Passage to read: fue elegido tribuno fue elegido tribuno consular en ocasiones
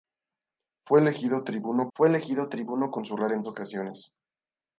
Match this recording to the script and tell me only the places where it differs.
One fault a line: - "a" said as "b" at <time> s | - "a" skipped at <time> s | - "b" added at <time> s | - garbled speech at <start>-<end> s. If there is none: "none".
none